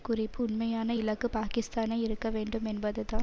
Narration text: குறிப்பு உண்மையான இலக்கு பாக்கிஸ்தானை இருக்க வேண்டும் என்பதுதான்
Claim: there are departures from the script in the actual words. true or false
false